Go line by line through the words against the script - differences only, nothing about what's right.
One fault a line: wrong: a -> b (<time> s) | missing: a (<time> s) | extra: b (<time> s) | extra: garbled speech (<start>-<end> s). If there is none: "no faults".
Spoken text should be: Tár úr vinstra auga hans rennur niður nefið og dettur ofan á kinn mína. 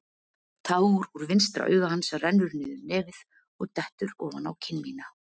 no faults